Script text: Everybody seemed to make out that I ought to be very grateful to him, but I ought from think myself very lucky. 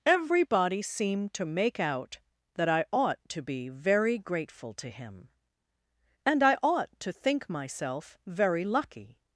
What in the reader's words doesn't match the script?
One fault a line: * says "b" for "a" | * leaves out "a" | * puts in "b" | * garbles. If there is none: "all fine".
* says "and" for "but"
* says "to" for "from"